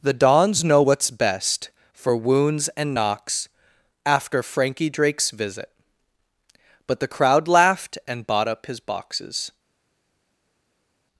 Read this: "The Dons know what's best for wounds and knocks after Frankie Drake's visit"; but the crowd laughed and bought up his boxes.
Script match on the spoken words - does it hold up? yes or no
yes